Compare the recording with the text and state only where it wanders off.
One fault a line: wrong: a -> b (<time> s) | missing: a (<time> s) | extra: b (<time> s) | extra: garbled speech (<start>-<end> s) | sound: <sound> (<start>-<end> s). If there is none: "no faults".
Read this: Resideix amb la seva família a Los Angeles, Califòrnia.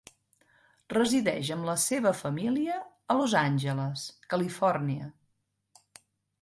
no faults